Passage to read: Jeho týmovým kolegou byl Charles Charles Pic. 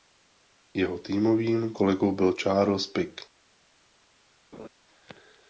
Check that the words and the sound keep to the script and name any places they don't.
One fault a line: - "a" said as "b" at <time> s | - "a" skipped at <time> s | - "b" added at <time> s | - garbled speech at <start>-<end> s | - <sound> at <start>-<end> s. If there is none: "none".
- "Charles" skipped at 2.9 s
- laugh at 4.5-4.7 s